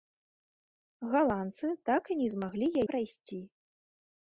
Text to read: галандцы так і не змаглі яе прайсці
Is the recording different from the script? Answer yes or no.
yes